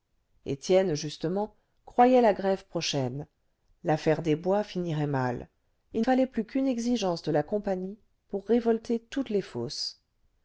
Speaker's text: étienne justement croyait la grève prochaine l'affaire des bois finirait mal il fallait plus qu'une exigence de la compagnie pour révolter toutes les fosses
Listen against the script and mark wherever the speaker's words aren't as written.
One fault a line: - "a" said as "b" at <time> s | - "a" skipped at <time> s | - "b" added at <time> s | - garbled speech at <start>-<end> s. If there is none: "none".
none